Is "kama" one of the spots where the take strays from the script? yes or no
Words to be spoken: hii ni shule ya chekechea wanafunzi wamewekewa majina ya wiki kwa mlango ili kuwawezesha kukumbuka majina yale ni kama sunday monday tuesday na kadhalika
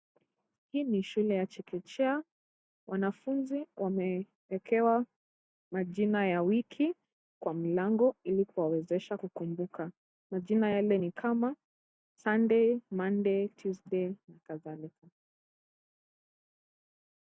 no